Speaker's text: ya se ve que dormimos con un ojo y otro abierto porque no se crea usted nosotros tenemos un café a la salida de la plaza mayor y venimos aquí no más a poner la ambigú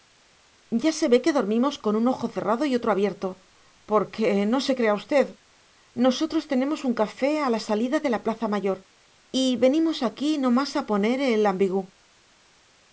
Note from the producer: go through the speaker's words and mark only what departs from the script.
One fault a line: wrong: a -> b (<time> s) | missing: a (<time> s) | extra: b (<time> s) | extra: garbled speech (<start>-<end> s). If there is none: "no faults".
extra: cerrado (2.4 s)
wrong: la -> el (11.2 s)